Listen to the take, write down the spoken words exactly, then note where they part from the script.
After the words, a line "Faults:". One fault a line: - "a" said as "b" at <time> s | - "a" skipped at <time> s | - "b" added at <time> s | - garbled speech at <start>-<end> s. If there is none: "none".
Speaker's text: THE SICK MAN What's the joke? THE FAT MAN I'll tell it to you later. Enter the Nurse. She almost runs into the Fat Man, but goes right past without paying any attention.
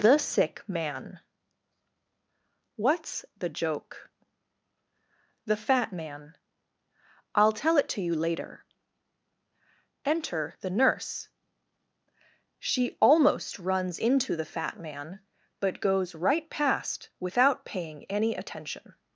THE SICK MAN What's the joke? THE FAT MAN I'll tell it to you later. Enter the Nurse. She almost runs into the Fat Man, but goes right past without paying any attention.
Faults:
none